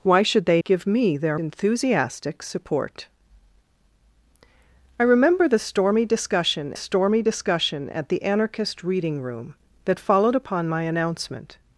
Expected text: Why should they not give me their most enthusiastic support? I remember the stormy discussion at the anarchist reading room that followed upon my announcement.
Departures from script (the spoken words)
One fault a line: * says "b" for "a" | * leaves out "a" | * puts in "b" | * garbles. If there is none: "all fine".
* leaves out "not"
* leaves out "most"
* puts in "stormy discussion"